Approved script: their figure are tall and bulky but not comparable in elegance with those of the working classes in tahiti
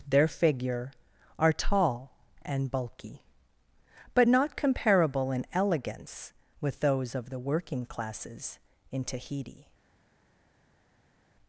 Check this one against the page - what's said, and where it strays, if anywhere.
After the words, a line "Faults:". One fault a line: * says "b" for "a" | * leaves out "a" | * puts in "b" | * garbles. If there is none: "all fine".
their figure are tall and bulky but not comparable in elegance with those of the working classes in tahiti
Faults:
all fine